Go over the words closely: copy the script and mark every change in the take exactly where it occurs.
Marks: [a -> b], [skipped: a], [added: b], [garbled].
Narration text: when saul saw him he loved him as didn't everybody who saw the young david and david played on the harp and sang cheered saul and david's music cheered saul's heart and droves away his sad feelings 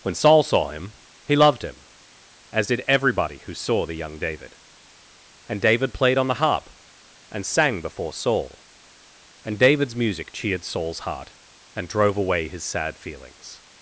when saul saw him he loved him as [didn't -> did] everybody who saw the young david and david played on the harp and sang [cheered -> before] saul and david's music cheered saul's heart and [droves -> drove] away his sad feelings